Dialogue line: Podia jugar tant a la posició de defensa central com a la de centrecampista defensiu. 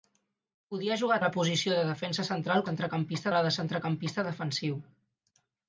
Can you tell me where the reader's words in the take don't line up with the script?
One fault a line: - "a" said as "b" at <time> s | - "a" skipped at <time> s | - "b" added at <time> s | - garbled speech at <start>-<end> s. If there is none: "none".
- "tant" skipped at 1.2 s
- "com" said as "centrecampista" at 2.7 s